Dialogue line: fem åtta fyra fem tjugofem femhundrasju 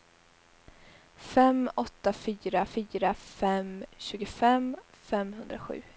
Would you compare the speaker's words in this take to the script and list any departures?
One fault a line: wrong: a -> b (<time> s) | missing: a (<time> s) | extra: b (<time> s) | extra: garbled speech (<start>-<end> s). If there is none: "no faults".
extra: fyra (2.6 s)